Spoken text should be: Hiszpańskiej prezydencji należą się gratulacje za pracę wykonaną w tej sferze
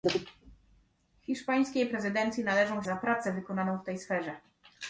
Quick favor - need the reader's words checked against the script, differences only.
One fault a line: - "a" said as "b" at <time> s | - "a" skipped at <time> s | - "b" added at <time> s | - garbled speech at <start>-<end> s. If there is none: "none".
- "się gratulacje" skipped at 2.8 s